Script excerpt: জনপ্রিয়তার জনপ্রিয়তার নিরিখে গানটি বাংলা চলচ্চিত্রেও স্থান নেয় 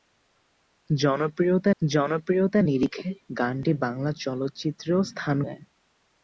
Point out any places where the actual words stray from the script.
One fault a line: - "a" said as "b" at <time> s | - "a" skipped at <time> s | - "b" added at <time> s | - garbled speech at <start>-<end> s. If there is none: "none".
none